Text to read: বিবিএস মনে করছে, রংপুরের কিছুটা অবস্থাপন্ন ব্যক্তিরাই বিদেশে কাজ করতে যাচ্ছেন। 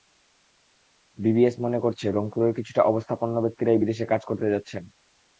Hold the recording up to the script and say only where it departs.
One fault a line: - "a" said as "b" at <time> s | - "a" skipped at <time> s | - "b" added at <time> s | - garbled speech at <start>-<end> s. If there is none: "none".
none